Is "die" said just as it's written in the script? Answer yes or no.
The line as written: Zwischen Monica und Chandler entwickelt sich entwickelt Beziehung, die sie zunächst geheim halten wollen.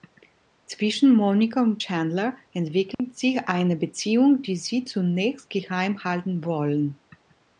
yes